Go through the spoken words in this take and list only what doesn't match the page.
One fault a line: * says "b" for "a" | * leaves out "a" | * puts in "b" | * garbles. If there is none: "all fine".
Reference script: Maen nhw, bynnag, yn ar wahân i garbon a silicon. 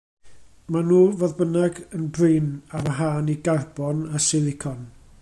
* puts in "fodd"
* puts in "brin"